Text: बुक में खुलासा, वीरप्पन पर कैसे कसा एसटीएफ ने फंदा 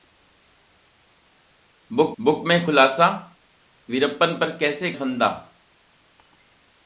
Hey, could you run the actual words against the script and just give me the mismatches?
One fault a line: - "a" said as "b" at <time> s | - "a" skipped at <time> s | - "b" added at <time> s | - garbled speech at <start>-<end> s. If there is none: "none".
- "बुक" added at 2.2 s
- "कसा एसटीएफ ने" skipped at 4.9 s